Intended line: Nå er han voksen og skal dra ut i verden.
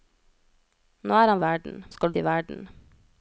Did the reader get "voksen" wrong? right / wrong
wrong